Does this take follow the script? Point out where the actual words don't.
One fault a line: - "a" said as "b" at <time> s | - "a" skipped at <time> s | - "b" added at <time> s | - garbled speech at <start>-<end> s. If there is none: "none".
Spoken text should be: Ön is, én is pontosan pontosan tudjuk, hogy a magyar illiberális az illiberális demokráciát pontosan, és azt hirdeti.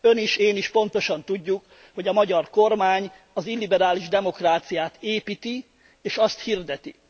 - "pontosan" skipped at 1.2 s
- "illiberális" said as "kormány" at 2.5 s
- "pontosan" said as "építi" at 5.0 s